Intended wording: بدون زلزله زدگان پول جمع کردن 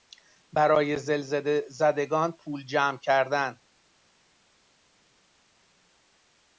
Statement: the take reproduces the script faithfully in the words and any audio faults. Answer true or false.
false